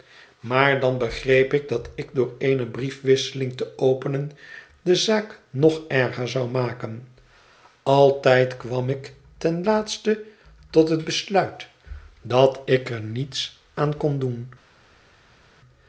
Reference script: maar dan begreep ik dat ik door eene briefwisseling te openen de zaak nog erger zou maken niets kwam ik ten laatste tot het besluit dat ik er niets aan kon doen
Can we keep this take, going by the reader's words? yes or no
no